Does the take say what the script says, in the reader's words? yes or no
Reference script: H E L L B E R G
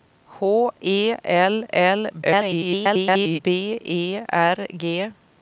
no